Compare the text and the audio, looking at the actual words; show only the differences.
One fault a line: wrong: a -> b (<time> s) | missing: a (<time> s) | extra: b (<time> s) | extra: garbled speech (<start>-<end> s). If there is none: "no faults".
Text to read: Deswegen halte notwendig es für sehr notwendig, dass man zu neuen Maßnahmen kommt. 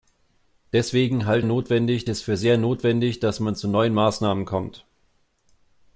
no faults